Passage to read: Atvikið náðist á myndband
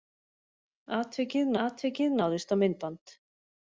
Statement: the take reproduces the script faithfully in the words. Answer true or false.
false